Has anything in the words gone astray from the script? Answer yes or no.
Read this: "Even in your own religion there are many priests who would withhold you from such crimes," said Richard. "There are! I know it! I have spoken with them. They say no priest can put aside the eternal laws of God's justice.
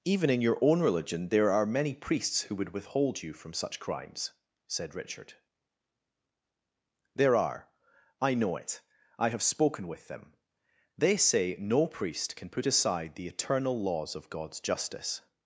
no